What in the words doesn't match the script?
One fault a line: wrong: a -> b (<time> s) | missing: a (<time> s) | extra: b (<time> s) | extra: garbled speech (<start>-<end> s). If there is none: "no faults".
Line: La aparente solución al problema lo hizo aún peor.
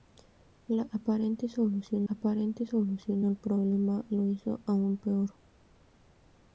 extra: aparente solución (2.1 s)